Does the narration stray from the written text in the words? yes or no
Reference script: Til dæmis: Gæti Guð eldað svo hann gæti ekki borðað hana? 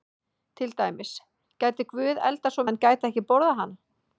no